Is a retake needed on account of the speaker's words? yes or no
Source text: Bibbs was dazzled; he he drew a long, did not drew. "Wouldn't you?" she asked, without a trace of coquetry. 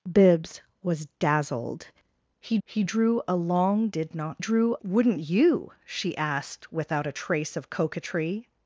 no